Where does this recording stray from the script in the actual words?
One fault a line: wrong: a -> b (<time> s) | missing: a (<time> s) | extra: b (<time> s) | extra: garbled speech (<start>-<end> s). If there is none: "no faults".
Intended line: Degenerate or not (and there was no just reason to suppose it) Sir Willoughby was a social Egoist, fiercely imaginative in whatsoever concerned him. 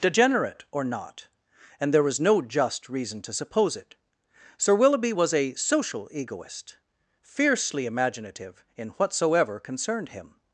no faults